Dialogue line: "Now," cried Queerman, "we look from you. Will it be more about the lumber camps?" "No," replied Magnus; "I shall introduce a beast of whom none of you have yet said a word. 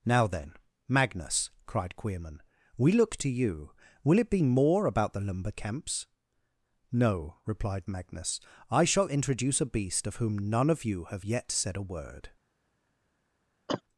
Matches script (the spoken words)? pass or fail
fail